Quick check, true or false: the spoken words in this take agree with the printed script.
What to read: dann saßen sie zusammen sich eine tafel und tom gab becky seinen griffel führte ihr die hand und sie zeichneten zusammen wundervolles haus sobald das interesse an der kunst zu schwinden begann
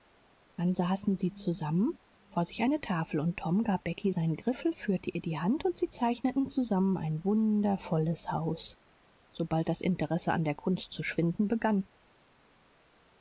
false